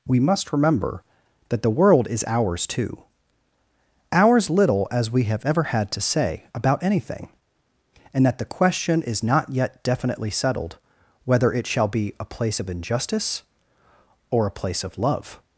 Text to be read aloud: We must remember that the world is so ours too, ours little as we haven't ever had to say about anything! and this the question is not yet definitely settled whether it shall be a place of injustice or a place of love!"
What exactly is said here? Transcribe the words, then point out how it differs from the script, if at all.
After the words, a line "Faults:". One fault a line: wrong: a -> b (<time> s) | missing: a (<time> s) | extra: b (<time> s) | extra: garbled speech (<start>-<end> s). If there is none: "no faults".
We must remember that the world is ours too, ours little as we have ever had to say about anything! and that the question is not yet definitely settled whether it shall be a place of injustice or a place of love!"
Faults:
missing: so (2.2 s)
wrong: haven't -> have (5.2 s)
wrong: this -> that (8.3 s)